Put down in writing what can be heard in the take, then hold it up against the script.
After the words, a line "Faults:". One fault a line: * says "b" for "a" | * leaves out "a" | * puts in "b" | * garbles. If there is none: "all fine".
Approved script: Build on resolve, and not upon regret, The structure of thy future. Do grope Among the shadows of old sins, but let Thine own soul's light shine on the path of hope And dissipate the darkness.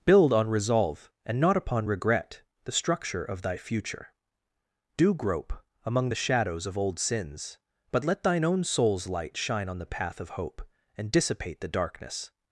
Build on resolve, and not upon regret, The structure of thy future. Do grope Among the shadows of old sins, but let Thine own soul's light shine on the path of hope And dissipate the darkness.
Faults:
all fine